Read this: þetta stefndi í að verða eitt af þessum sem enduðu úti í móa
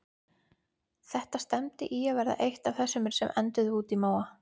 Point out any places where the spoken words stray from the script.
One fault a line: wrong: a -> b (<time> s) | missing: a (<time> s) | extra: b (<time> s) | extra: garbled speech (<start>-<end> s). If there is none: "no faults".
no faults